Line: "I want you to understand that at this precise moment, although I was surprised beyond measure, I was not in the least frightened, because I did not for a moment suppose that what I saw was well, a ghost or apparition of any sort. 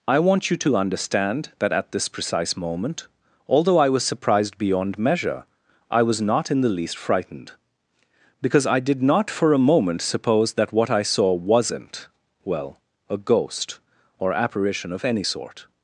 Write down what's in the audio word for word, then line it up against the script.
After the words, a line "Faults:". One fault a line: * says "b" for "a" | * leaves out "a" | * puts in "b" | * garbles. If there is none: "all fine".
"I want you to understand that at this precise moment, although I was surprised beyond measure, I was not in the least frightened, because I did not for a moment suppose that what I saw wasn't well, a ghost or apparition of any sort.
Faults:
* says "wasn't" for "was"